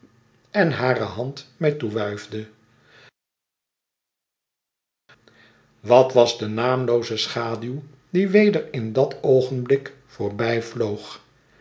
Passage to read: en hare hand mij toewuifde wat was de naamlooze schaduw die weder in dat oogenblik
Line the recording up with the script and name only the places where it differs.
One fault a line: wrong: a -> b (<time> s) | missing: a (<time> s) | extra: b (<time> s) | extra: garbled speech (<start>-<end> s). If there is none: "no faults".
no faults